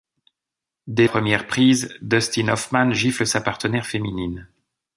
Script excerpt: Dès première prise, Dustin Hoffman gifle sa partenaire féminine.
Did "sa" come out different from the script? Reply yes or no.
no